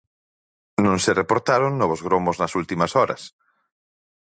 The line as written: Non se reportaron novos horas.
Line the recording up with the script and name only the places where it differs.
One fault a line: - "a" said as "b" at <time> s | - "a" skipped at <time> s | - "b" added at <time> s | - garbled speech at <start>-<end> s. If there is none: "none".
- "gromos nas últimas" added at 2.1 s